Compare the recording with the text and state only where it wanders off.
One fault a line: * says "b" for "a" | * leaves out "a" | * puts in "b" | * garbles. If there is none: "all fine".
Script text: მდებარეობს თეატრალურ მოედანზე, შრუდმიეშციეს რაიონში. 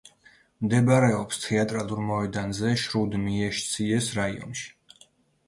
all fine